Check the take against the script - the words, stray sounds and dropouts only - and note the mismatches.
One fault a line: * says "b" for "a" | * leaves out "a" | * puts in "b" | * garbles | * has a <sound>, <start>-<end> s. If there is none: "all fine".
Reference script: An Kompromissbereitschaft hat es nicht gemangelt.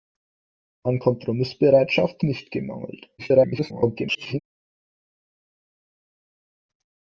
* leaves out "hat es"
* garbles